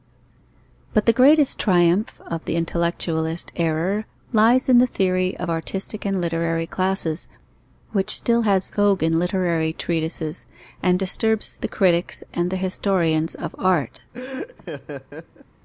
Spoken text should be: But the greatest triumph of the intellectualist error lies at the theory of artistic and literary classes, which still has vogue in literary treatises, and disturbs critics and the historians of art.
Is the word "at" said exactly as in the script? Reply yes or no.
no